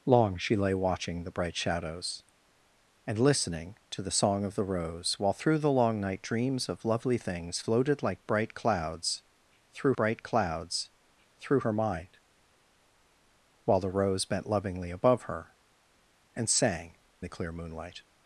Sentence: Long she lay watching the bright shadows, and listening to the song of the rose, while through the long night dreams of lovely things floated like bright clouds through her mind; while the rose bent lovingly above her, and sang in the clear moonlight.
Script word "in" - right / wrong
wrong